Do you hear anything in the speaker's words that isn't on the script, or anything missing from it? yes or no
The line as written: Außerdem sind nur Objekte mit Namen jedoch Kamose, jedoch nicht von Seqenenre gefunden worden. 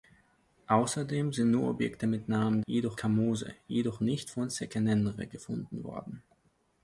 no